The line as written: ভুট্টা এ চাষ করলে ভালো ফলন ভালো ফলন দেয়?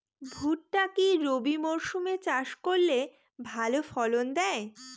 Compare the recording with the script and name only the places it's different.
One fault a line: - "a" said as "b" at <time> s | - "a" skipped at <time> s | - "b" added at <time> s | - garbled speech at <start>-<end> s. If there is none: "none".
- "কি রবি মরসুম" added at 0.9 s
- "ভালো ফলন" skipped at 4.2 s